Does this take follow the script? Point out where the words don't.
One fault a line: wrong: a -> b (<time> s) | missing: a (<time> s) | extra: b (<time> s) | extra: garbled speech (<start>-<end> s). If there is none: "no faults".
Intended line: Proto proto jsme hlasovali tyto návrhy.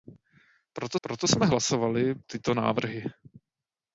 no faults